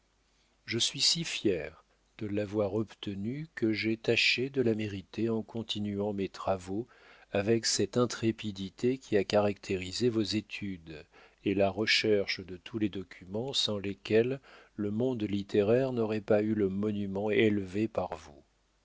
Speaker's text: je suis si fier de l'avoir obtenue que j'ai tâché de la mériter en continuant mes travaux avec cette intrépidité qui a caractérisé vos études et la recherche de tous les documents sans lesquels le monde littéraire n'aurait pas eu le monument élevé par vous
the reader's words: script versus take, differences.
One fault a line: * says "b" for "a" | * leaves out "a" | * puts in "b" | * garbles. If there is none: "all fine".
all fine